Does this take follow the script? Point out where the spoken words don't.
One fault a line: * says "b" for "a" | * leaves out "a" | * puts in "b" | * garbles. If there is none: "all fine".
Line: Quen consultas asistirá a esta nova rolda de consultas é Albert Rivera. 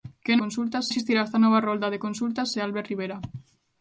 all fine